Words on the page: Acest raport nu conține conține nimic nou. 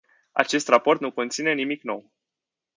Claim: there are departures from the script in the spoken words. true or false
true